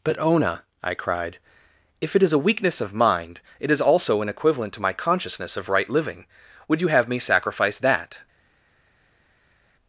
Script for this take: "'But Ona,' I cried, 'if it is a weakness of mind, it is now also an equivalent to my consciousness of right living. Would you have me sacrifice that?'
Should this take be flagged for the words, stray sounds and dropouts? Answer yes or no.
yes